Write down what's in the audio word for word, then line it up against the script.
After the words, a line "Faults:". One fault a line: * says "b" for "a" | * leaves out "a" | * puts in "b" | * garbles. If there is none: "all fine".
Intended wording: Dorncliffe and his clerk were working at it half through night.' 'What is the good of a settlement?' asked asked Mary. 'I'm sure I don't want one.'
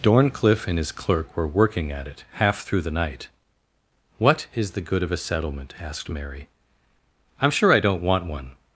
Dorncliffe and his clerk were working at it half through the night.' 'What is the good of a settlement?' asked Mary. 'I'm sure I don't want one.'
Faults:
* puts in "the"
* leaves out "asked"